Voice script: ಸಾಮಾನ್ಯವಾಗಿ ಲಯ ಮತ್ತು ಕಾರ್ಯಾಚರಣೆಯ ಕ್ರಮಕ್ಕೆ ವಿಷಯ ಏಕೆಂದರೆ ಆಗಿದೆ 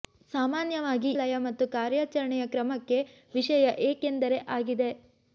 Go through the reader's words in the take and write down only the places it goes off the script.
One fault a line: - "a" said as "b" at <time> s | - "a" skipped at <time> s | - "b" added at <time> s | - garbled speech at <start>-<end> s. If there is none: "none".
none